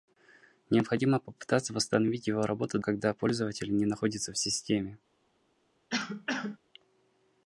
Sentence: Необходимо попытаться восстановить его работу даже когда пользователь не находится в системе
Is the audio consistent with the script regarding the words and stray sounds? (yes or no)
no